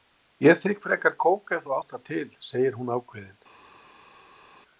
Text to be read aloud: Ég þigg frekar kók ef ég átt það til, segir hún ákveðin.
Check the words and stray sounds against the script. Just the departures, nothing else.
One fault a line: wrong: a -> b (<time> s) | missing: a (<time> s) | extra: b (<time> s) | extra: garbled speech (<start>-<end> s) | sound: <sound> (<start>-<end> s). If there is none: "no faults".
wrong: ég -> þú (1.7 s)